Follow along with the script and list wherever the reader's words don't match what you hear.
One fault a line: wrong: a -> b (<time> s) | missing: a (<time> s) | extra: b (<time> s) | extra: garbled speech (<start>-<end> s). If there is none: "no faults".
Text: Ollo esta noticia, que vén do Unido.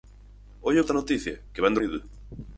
no faults